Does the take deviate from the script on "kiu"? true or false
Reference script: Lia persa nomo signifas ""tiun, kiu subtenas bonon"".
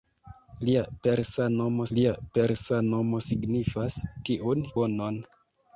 true